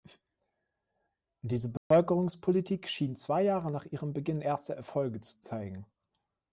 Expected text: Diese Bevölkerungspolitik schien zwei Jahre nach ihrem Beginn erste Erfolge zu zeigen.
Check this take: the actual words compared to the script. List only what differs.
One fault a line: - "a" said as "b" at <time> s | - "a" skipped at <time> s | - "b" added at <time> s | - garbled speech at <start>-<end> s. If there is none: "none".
none